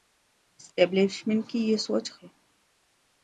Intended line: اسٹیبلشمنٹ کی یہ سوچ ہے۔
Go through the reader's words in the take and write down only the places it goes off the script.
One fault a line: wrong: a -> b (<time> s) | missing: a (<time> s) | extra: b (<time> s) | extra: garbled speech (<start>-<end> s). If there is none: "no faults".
no faults